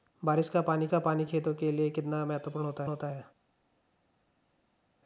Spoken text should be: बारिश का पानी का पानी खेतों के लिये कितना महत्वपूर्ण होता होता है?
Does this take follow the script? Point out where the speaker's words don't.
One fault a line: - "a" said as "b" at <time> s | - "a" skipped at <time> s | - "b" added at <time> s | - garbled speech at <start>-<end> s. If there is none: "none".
none